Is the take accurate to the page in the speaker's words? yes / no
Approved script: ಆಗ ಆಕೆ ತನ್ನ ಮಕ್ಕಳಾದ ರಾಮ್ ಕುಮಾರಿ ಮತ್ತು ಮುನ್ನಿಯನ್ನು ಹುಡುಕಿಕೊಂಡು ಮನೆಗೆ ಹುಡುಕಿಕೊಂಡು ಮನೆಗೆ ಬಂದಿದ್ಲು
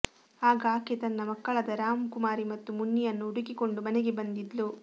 no